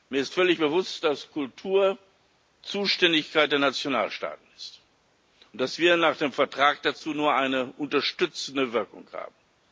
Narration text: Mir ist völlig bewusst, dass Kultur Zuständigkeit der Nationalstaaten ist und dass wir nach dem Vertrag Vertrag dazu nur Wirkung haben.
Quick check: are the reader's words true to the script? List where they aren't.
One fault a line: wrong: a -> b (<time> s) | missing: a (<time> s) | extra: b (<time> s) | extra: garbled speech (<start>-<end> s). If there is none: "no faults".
missing: Vertrag (6.8 s)
extra: eine unterstützende (7.3 s)